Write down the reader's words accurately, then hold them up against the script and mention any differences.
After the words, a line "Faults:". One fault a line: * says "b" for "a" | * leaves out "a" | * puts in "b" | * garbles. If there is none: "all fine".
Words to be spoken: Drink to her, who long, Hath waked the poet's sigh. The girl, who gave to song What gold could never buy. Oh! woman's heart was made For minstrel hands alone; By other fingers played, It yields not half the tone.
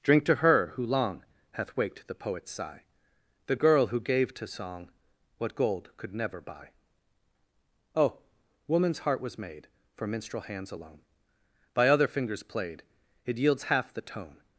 Drink to her, who long, Hath waked the poet's sigh. The girl, who gave to song What gold could never buy. Oh! woman's heart was made For minstrel hands alone; By other fingers played, It yields half the tone.
Faults:
* leaves out "not"